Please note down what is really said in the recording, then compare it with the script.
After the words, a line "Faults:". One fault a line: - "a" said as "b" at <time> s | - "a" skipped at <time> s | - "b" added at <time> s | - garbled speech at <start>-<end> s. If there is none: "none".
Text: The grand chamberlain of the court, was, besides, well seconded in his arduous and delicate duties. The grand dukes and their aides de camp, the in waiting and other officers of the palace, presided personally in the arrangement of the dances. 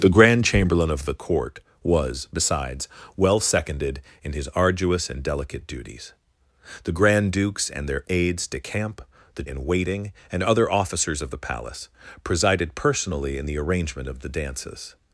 The grand chamberlain of the court, was, besides, well seconded in his arduous and delicate duties. The grand dukes and their aides de camp, the in waiting and other officers of the palace, presided personally in the arrangement of the dances.
Faults:
none